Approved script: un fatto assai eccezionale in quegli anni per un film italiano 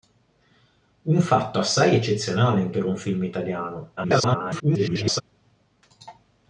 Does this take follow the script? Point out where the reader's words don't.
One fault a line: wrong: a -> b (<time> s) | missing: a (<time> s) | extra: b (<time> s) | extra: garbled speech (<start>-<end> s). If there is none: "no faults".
missing: quegli anni (2.7 s)
extra: garbled speech (4.0-5.2 s)